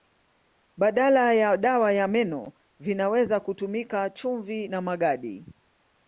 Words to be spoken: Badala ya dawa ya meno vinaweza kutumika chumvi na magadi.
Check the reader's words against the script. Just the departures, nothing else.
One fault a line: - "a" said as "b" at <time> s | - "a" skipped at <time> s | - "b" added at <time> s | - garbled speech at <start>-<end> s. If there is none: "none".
none